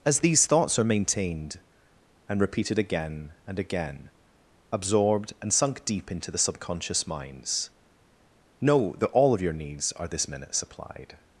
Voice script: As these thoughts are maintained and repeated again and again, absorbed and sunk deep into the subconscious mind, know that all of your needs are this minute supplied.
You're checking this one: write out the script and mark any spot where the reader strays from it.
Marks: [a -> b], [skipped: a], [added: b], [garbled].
As these thoughts are maintained and repeated again and again, absorbed and sunk deep into the subconscious [mind, -> minds] know that all of your needs are this minute supplied.